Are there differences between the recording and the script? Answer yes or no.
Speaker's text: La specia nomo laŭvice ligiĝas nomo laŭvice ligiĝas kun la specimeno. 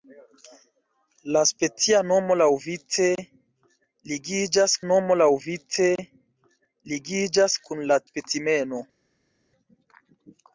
no